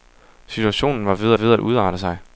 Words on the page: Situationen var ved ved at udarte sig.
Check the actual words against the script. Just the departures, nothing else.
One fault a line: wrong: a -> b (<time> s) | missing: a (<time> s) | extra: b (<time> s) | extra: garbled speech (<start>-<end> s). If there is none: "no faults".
no faults